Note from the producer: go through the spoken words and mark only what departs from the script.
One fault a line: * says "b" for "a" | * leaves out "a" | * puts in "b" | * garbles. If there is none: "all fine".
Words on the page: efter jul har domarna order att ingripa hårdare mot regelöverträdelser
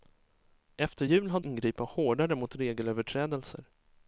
* leaves out "domarna order att"